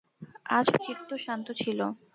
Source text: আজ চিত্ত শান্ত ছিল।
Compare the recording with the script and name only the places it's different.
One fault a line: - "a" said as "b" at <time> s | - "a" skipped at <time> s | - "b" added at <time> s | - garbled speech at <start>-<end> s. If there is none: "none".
none